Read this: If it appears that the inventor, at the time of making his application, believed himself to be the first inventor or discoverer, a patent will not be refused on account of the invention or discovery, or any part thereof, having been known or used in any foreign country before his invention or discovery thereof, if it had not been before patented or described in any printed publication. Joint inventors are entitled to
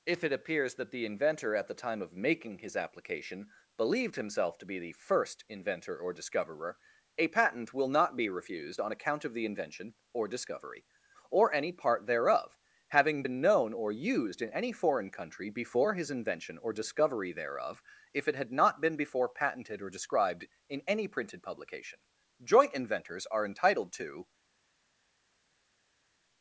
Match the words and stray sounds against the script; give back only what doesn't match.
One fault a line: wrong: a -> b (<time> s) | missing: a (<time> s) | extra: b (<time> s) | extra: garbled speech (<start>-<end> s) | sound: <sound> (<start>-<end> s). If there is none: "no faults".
no faults